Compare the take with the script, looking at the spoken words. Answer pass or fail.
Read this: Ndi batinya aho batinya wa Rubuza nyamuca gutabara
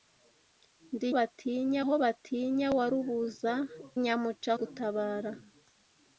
pass